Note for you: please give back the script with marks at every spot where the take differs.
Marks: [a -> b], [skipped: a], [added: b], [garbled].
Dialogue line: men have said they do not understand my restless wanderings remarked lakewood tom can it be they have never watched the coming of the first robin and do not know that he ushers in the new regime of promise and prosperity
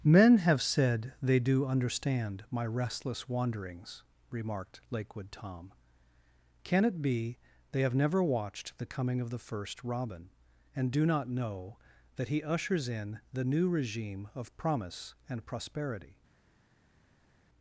men have said they do [skipped: not] understand my restless wanderings remarked lakewood tom can it be they have never watched the coming of the first robin and do not know that he ushers in the new regime of promise and prosperity